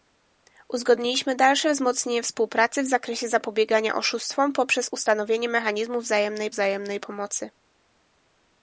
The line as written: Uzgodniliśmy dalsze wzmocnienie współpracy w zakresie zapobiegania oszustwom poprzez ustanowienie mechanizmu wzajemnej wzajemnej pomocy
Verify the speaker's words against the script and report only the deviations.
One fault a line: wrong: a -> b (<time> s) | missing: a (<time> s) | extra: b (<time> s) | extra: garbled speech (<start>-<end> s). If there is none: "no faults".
no faults